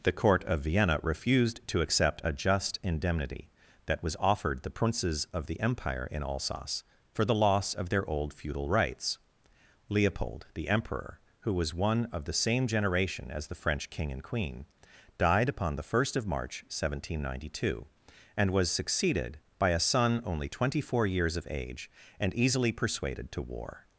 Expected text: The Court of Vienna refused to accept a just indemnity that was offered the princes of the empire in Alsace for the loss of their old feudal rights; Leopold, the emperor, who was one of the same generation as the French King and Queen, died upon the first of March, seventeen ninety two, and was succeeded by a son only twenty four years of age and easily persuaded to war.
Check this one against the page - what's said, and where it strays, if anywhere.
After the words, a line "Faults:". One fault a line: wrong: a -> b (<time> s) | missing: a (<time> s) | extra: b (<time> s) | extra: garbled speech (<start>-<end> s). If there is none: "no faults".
The Court of Vienna refused to accept a just indemnity that was offered the princes of the empire in Alsace for the loss of their old feudal rights; Leopold, the emperor, who was one of the same generation as the French King and Queen, died upon the first of March, seventeen ninety two, and was succeeded by a son only twenty four years of age and easily persuaded to war.
Faults:
no faults